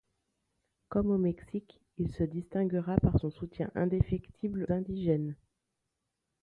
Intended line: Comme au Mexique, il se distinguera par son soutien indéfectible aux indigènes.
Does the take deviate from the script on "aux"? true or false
true